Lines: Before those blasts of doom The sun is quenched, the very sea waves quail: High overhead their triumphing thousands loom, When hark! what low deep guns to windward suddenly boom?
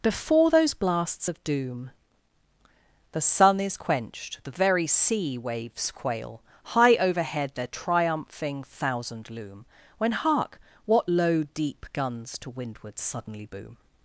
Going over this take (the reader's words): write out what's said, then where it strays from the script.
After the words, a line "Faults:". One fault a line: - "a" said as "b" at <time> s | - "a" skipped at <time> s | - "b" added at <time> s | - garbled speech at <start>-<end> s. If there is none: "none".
Before those blasts of doom The sun is quenched, the very sea waves quail: High overhead their triumphing thousand loom, When hark! what low deep guns to windward suddenly boom?
Faults:
- "thousands" said as "thousand" at 8.6 s